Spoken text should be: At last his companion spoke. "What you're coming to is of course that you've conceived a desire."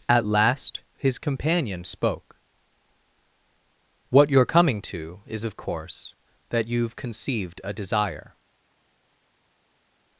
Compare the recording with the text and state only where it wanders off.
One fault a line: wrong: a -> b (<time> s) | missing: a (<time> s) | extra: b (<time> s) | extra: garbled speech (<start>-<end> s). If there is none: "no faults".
no faults